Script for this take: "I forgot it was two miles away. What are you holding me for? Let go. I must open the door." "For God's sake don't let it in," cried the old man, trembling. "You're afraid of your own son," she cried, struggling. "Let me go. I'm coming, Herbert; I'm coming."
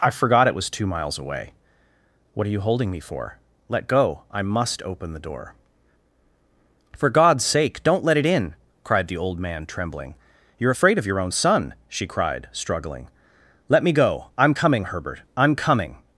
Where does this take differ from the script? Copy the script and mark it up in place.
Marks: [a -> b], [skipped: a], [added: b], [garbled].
"I forgot it was two miles away. What are you holding me for? Let go. I must open the door." "For God's sake don't let it in," cried the old man, trembling. "You're afraid of your own son," she cried, struggling. "Let me go. I'm coming, Herbert; I'm coming."